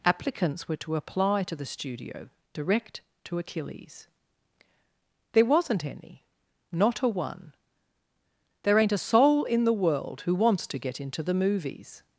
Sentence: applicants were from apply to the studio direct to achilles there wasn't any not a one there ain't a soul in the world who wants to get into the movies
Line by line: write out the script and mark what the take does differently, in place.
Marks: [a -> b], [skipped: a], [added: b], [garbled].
applicants were [from -> to] apply to the studio direct to achilles there wasn't any not a one there ain't a soul in the world who wants to get into the movies